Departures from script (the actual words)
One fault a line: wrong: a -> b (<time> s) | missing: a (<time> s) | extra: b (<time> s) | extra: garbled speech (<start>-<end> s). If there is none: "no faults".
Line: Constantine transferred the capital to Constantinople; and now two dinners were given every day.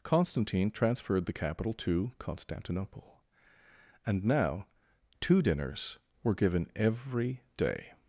no faults